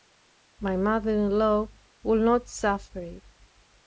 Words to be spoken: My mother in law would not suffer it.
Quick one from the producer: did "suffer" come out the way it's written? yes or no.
yes